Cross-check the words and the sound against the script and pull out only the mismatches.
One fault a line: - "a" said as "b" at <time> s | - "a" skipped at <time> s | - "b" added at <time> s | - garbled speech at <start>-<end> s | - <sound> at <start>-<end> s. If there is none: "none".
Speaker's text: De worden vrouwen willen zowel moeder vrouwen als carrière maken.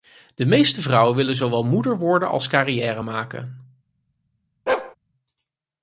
- "worden" said as "meeste" at 0.5 s
- "vrouwen" said as "worden" at 2.0 s
- bark at 4.7-5.0 s